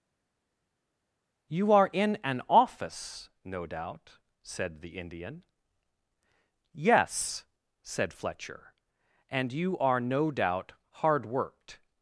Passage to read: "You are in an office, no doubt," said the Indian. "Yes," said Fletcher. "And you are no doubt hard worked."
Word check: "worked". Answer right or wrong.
right